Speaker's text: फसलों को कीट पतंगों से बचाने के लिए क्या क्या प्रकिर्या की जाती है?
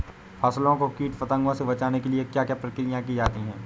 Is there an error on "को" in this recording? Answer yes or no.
no